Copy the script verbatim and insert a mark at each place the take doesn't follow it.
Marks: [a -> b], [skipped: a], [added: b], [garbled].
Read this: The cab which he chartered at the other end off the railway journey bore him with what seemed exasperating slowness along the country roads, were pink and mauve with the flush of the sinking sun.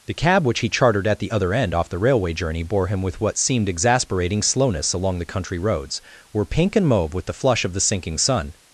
The cab which he chartered at the other end off the railway journey bore him with what seemed exasperating slowness along the country roads, were pink and mauve with the flush of the sinking sun.